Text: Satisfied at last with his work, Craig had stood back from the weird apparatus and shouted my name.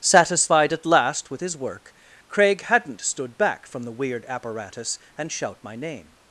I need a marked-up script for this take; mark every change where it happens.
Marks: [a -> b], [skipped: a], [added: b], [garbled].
Satisfied at last with his work, Craig [had -> hadn't] stood back from the weird apparatus and [shouted -> shout] my name.